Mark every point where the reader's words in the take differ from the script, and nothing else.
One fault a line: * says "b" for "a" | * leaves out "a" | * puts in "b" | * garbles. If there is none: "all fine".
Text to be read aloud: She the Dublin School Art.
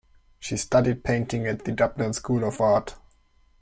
* puts in "studied painting at"
* puts in "of"